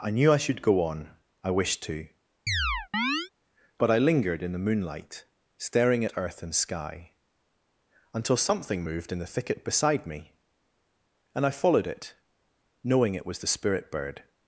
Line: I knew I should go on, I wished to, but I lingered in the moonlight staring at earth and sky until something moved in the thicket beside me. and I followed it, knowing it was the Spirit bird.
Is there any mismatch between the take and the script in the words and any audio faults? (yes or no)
yes